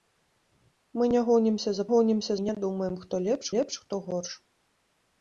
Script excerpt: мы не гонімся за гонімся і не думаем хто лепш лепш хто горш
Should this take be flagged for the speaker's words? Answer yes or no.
no